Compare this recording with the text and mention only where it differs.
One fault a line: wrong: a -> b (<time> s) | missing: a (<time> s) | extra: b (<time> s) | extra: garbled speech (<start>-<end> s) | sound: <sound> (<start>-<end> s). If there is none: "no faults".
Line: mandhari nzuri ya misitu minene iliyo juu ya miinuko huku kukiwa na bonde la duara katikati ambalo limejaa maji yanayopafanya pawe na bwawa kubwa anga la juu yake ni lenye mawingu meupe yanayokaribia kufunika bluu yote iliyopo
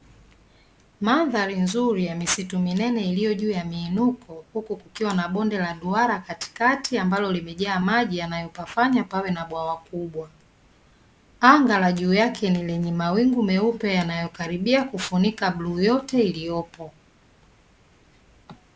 no faults